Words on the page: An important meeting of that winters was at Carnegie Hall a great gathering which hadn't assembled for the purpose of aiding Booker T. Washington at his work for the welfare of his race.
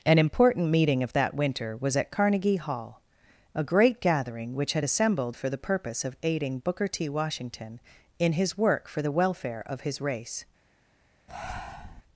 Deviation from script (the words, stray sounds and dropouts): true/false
true